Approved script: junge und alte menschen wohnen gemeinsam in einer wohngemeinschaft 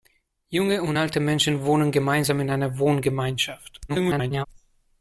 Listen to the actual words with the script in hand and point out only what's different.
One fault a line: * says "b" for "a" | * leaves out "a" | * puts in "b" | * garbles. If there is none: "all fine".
* garbles